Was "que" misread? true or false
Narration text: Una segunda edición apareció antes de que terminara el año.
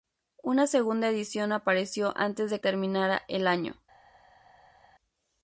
true